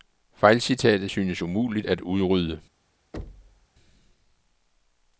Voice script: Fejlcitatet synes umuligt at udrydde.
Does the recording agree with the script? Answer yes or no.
yes